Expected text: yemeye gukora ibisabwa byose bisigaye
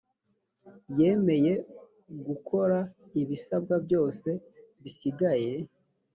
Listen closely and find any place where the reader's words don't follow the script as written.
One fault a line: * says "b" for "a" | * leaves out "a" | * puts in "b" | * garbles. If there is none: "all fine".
all fine